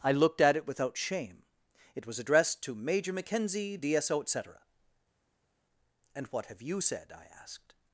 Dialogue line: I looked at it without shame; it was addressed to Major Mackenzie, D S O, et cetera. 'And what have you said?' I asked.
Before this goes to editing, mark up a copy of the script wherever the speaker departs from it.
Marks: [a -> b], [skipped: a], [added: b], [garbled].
I looked at it without shame; it was addressed to Major Mackenzie, D S O, et cetera. 'And what have you said?' I asked.